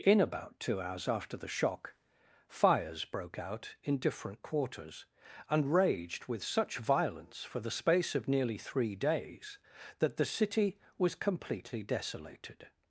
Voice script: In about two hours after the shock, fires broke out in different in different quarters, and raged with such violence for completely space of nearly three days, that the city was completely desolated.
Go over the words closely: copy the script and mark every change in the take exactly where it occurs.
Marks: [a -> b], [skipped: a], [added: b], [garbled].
In about two hours after the shock, fires broke out in different [skipped: in different] quarters, and raged with such violence for [completely -> the] space of nearly three days, that the city was completely desolated.